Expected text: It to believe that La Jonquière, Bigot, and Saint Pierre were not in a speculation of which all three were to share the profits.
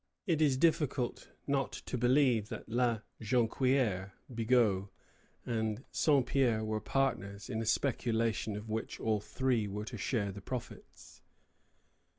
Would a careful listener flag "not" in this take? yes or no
yes